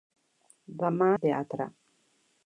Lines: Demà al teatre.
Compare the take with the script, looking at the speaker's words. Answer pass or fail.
pass